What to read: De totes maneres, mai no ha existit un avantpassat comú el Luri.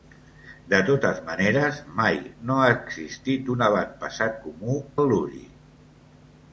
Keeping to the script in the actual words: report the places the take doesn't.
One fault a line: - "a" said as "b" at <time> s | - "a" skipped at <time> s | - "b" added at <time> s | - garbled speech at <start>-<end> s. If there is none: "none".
none